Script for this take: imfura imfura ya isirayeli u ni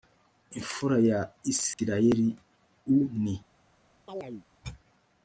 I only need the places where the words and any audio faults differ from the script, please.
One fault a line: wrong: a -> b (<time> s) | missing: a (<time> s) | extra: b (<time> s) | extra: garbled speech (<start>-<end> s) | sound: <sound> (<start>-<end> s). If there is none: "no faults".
missing: imfura (1.0 s)
sound: dropout (1.7-1.8 s)
sound: chirp (4.1-4.5 s)